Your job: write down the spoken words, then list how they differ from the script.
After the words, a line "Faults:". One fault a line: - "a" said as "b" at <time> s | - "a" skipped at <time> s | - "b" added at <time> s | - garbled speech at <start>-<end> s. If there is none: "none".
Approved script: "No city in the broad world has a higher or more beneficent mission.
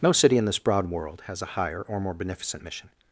"No city in this broad world has a higher or more beneficent mission.
Faults:
- "the" said as "this" at 0.5 s